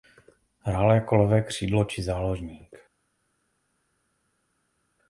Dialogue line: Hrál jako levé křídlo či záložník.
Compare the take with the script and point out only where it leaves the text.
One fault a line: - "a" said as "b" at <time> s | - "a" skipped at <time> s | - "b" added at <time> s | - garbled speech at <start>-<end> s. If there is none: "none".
none